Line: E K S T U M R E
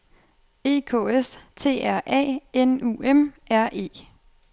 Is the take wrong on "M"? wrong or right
right